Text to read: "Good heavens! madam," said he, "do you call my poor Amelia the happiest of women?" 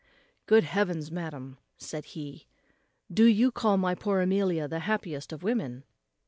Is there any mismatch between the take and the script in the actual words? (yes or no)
no